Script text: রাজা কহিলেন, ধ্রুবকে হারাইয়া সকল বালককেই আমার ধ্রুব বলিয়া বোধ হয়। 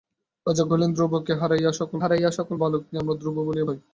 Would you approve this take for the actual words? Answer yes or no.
no